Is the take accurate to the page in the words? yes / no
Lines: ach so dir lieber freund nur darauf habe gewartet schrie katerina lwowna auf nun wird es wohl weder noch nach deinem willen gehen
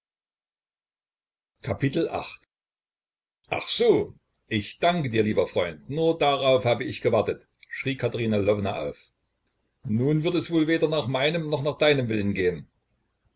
no